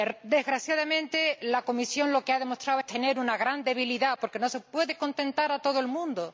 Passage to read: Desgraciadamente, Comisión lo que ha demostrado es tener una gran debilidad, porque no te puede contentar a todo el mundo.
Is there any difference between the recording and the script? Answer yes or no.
yes